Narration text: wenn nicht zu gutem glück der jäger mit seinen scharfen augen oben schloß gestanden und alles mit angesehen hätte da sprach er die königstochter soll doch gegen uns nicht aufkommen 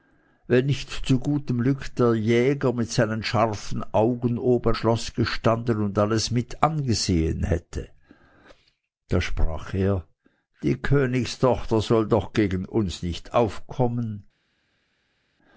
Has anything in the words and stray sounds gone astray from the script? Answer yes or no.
no